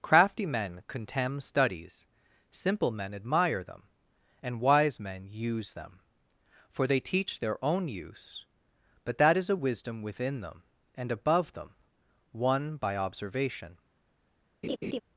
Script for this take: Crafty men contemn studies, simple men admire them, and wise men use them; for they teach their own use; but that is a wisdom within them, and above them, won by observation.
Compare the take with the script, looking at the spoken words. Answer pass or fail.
pass